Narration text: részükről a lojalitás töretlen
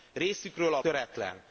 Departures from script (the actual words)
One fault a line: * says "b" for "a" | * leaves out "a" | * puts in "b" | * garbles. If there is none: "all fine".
* leaves out "lojalitás"